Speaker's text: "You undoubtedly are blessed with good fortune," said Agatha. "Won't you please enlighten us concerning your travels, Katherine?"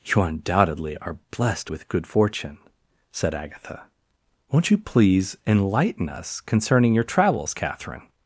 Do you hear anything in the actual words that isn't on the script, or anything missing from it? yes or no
no